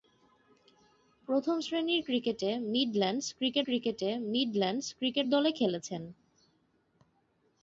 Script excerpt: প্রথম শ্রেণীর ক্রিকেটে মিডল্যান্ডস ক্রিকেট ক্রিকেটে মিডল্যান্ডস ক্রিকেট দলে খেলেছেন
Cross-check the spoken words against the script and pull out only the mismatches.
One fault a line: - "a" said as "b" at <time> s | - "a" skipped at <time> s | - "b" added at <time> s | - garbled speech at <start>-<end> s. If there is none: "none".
none